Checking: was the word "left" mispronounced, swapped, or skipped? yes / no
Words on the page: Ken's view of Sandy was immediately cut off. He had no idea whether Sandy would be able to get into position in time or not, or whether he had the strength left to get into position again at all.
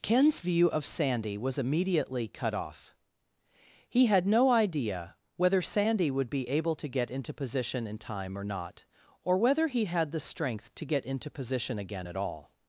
yes